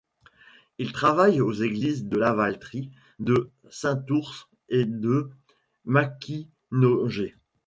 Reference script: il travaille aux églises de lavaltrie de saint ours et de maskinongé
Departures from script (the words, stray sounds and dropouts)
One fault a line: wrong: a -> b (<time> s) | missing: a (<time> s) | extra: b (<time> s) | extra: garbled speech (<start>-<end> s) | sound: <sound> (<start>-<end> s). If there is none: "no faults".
no faults